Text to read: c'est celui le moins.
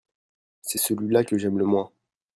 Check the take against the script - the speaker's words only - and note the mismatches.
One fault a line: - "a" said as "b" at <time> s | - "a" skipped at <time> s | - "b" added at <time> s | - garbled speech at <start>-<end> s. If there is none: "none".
- "là que j'aime" added at 1.1 s